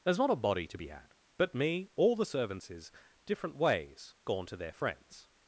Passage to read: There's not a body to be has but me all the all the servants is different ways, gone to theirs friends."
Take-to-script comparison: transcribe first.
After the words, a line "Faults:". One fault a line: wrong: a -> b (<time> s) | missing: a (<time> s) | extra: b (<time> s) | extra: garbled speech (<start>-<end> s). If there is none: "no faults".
There's not a body to be had but me all the servants is different ways, gone to their friends."
Faults:
wrong: has -> had (0.9 s)
missing: all the (2.2 s)
wrong: theirs -> their (4.6 s)